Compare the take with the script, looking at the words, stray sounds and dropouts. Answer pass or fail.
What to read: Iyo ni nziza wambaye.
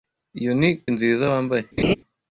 fail